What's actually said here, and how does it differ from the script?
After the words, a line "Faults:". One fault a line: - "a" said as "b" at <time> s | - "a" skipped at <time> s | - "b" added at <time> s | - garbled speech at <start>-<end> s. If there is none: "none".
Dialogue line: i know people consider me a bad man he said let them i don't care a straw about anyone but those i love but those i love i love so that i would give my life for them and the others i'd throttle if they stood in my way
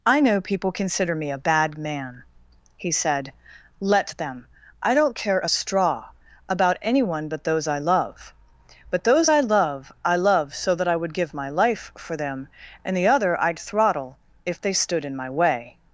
i know people consider me a bad man he said let them i don't care a straw about anyone but those i love but those i love i love so that i would give my life for them and the other i'd throttle if they stood in my way
Faults:
- "others" said as "other" at 13.1 s